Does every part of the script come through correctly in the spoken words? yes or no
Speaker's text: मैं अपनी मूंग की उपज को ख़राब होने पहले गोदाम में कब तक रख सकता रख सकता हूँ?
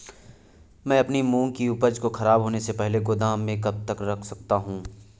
no